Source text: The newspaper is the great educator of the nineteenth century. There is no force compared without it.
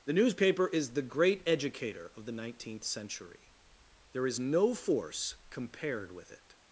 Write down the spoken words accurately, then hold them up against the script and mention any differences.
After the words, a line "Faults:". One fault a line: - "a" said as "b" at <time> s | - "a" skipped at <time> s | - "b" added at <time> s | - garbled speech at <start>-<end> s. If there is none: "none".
The newspaper is the great educator of the nineteenth century. There is no force compared with it.
Faults:
- "without" said as "with" at 6.1 s